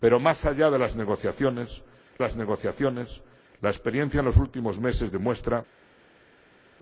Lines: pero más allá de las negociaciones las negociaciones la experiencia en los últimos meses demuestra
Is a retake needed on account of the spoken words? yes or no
no